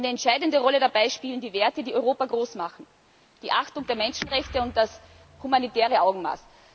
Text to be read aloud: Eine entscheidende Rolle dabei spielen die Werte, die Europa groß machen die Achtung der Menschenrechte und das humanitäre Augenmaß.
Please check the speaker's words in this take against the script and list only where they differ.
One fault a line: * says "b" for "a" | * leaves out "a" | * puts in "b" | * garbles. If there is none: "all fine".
all fine